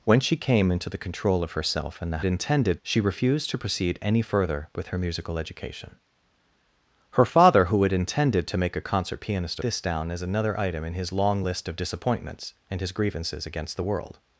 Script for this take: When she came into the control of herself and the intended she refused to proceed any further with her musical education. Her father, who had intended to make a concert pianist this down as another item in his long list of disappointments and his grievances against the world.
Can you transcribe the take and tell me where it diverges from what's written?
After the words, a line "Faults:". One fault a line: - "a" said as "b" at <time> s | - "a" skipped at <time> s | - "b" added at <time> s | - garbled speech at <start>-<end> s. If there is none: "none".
When she came into the control of herself and the intended she refused to proceed any further with her musical education. Her father, who had intended to make a concert pianist this down as another item in his long list of disappointments and his grievances against the world.
Faults:
none